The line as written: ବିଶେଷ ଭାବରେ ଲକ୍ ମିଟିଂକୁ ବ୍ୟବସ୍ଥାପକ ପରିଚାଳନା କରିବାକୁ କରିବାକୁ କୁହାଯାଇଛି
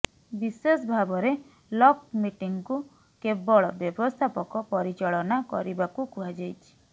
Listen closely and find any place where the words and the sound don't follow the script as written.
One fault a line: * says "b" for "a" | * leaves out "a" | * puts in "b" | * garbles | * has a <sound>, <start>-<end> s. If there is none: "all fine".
* puts in "କେବଳ"
* leaves out "କରିବାକୁ"